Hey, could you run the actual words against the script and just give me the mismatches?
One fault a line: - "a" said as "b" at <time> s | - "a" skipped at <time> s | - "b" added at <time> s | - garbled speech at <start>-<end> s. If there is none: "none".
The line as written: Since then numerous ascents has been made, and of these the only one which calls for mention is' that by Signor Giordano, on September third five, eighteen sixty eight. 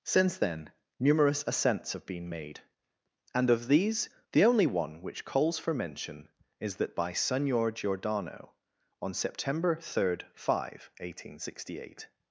- "has" said as "have" at 1.9 s